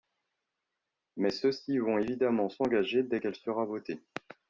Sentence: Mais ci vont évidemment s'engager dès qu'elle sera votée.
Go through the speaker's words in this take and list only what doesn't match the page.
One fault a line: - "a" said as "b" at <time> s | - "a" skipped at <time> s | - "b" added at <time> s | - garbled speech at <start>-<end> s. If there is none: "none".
- "ceux" added at 1.3 s